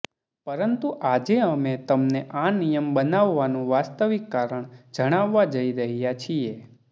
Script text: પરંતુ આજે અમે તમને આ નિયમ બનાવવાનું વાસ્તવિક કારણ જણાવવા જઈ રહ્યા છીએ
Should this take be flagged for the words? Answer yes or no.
no